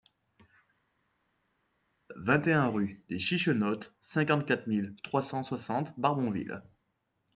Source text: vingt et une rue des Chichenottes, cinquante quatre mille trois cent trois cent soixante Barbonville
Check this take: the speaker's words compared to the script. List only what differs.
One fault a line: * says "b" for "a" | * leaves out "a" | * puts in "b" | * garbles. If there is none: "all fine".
* says "un" for "une"
* leaves out "trois cent"